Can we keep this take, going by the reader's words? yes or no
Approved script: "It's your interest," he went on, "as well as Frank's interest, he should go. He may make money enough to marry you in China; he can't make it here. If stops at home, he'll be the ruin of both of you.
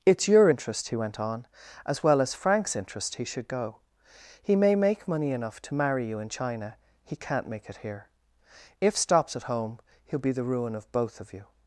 yes